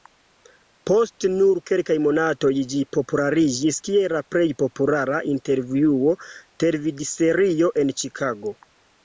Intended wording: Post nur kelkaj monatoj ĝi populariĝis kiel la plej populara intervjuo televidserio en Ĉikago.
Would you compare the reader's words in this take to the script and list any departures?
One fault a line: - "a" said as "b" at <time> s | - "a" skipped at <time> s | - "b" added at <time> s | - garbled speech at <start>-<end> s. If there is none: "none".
none